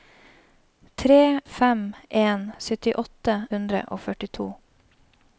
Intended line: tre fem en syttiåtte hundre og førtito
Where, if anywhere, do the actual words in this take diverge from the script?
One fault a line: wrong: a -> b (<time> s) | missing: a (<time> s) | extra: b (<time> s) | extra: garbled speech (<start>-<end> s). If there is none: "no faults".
no faults